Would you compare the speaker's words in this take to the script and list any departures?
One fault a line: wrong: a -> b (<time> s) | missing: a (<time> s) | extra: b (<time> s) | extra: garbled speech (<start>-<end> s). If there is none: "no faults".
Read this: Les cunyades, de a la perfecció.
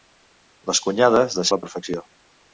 no faults